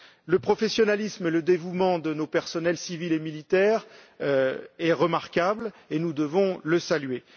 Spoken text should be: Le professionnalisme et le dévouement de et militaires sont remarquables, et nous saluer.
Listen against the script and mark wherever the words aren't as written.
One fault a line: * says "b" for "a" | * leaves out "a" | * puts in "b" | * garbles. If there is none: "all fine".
* puts in "nos personnels civils"
* puts in "devons les"